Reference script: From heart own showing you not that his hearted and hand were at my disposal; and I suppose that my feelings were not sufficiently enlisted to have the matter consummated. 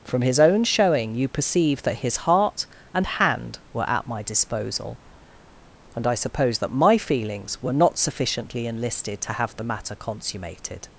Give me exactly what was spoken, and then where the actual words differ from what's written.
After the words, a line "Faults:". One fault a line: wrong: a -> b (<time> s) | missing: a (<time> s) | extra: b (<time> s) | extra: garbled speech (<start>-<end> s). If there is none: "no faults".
From his own showing you perceive that his heart and hand were at my disposal; and I suppose that my feelings were not sufficiently enlisted to have the matter consummated.
Faults:
wrong: heart -> his (0.2 s)
wrong: not -> perceive (1.3 s)
wrong: hearted -> heart (2.2 s)